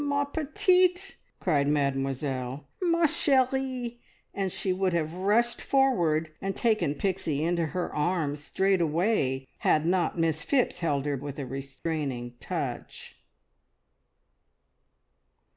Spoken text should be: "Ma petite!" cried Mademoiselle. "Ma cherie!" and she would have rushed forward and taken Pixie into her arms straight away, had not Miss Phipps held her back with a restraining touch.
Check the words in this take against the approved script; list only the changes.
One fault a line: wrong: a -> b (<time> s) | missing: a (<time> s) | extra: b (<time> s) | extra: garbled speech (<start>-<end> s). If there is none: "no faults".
missing: back (11.2 s)